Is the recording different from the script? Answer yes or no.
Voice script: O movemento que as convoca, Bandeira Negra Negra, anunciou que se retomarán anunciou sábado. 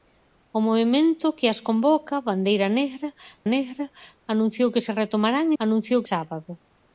no